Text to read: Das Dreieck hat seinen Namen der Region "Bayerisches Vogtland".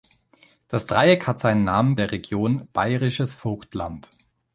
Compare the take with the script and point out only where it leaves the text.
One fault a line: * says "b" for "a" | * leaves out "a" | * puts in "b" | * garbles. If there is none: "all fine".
all fine